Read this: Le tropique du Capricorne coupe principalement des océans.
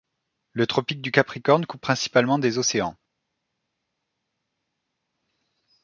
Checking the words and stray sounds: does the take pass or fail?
pass